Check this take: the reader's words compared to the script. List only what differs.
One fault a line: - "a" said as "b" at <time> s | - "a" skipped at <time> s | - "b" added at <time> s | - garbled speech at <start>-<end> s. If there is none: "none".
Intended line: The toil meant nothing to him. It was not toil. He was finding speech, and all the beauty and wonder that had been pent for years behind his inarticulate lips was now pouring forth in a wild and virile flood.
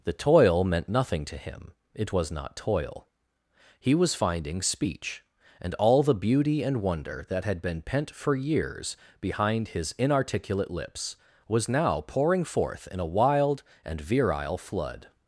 none